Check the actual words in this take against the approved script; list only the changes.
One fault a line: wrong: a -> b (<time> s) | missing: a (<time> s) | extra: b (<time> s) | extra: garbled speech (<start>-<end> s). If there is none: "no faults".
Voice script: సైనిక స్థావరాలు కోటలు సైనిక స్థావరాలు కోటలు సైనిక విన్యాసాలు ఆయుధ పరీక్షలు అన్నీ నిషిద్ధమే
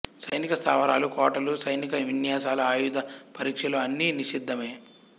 missing: స్థావరాలు కోటలు సైనిక (1.9 s)